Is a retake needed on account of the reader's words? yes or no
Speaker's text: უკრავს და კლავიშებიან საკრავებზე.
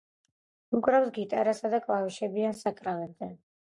yes